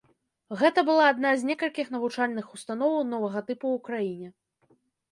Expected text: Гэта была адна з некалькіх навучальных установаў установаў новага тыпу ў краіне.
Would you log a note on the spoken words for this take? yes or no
yes